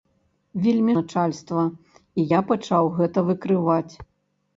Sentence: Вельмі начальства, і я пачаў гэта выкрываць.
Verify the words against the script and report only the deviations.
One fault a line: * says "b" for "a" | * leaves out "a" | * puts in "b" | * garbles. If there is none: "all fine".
all fine